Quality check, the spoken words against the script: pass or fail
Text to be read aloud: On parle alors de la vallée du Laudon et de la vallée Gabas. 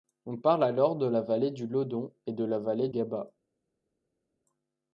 pass